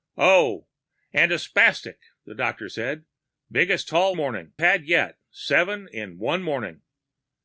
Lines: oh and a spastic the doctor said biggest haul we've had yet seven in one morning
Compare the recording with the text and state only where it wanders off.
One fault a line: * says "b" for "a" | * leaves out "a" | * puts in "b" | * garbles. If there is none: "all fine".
* says "morning" for "we've"